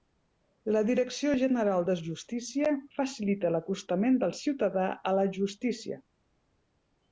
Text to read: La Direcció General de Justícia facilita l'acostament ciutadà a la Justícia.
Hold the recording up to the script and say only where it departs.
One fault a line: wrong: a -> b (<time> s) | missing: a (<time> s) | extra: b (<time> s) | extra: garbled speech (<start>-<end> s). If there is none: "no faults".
extra: del (4.3 s)